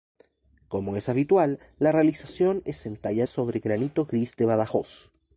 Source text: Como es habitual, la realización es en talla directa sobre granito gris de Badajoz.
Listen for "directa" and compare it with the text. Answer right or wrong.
wrong